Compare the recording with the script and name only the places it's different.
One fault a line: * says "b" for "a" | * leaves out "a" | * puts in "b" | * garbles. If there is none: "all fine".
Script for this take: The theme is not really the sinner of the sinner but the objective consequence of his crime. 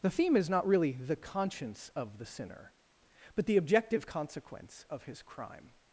* says "conscience" for "sinner"